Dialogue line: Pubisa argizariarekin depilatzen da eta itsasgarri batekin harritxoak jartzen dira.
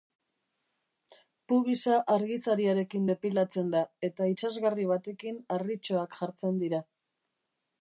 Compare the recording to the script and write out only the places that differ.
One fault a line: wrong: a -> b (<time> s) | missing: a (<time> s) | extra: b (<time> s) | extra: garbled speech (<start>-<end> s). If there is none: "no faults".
no faults